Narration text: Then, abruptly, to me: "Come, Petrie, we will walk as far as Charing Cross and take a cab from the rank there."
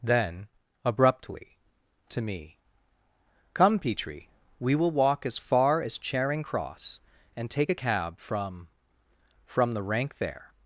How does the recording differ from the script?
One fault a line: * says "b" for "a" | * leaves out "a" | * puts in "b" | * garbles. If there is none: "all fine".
* puts in "from"